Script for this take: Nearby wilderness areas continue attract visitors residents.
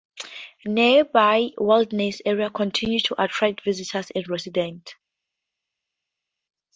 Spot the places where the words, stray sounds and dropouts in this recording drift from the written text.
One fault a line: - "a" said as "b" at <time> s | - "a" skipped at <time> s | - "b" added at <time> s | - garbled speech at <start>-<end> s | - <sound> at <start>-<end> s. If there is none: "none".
- "to" added at 3.0 s
- "and" added at 4.2 s